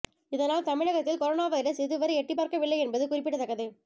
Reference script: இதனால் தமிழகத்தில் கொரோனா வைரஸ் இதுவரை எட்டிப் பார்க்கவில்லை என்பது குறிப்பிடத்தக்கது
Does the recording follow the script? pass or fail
pass